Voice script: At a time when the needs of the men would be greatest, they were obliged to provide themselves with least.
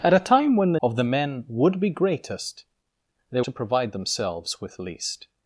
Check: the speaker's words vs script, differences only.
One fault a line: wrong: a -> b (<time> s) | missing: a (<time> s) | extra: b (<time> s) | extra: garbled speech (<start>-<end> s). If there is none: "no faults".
missing: needs (0.8 s)
missing: were obliged (3.4 s)